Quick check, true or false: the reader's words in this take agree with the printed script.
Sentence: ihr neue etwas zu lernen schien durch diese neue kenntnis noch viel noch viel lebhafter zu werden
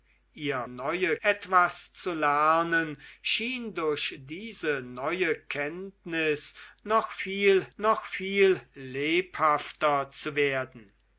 true